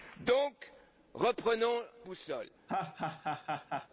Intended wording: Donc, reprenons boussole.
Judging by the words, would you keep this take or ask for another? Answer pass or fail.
pass